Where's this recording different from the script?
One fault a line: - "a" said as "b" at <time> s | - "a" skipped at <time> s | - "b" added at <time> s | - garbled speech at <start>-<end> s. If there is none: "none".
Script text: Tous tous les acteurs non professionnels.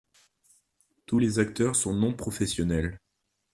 - "tous" skipped at 1.2 s
- "sont" added at 1.7 s